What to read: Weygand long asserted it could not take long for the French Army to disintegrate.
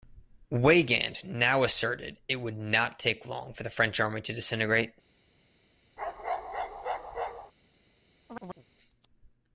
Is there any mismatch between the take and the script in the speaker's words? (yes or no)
yes